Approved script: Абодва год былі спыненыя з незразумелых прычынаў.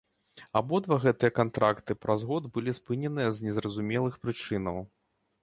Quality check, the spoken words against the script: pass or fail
fail